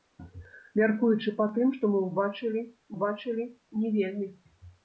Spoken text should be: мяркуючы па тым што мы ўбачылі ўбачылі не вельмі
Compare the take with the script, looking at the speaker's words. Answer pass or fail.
pass